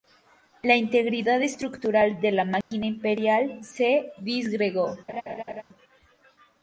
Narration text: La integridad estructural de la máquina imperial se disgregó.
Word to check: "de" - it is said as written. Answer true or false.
true